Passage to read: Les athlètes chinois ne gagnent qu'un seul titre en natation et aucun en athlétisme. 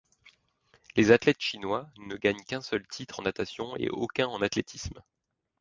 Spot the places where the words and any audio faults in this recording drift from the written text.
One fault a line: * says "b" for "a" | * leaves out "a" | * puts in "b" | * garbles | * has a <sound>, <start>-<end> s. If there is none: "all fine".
all fine